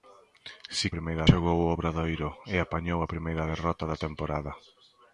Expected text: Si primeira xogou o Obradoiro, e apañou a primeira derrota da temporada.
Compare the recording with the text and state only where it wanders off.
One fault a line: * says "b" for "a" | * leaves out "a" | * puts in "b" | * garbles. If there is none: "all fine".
all fine